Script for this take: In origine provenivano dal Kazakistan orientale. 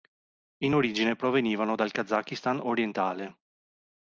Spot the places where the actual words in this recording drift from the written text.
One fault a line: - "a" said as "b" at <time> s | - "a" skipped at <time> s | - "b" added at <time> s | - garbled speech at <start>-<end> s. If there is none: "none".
none